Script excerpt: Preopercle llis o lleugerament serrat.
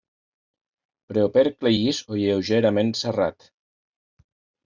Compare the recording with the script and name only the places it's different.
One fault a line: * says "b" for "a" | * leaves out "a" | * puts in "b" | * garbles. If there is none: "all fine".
all fine